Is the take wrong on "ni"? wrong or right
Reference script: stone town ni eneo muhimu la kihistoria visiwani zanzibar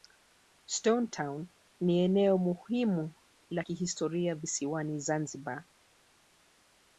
right